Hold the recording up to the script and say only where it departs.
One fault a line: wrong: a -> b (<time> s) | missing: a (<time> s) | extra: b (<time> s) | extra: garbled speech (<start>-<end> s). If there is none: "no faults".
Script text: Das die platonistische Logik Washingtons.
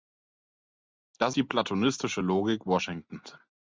no faults